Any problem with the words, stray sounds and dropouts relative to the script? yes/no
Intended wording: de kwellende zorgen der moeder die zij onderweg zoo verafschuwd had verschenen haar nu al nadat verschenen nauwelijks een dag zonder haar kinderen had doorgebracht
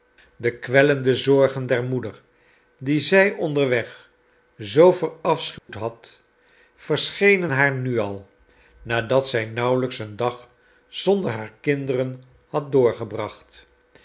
yes